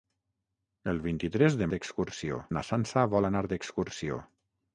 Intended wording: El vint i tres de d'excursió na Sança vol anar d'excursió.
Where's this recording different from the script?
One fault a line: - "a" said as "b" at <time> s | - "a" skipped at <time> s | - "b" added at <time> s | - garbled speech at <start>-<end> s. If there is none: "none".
none